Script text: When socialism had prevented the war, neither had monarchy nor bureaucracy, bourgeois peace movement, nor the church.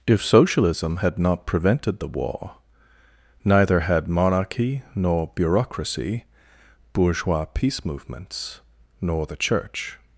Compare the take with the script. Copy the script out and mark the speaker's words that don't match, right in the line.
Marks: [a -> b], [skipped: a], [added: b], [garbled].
[When -> If] socialism had [added: not] prevented the war, neither had monarchy nor bureaucracy, bourgeois peace [movement, -> movements] nor the church.